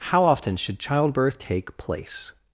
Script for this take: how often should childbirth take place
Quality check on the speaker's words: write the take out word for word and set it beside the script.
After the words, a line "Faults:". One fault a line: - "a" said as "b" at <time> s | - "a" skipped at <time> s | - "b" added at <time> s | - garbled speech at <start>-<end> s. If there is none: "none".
how often should childbirth take place
Faults:
none